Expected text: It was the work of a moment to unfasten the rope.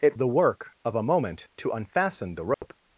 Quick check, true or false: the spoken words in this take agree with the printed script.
false